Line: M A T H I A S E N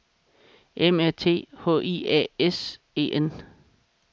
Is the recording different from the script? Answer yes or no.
no